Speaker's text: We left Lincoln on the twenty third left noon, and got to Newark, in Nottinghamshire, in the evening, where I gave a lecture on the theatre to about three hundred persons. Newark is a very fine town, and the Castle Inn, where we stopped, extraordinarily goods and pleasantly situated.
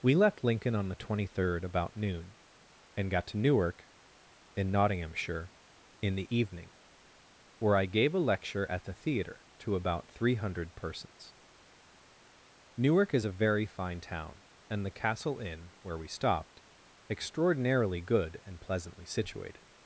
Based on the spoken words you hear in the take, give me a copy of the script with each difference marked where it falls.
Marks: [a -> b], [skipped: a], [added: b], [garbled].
We left Lincoln on the twenty third [left -> about] noon, and got to Newark, in Nottinghamshire, in the evening, where I gave a lecture [on -> at] the theatre to about three hundred persons. Newark is a very fine town, and the Castle Inn, where we stopped, extraordinarily [goods -> good] and pleasantly situated.